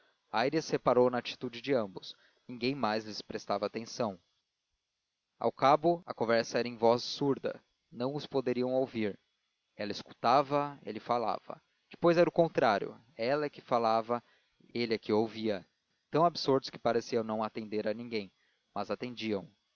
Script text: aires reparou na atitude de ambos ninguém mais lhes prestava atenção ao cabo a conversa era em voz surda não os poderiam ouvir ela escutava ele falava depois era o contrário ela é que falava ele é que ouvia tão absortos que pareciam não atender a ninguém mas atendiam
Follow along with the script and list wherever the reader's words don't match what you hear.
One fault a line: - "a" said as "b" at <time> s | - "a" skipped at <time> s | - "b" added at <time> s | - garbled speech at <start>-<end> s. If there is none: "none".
none